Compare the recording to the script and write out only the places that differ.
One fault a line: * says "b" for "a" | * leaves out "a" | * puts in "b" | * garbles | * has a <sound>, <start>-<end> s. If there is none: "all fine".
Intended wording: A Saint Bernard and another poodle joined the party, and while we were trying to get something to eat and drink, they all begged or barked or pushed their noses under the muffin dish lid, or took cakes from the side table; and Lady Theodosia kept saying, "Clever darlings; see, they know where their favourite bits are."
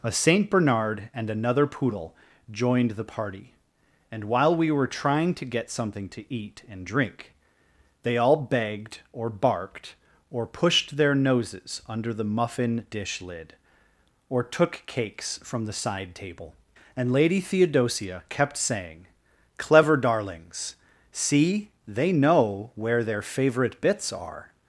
all fine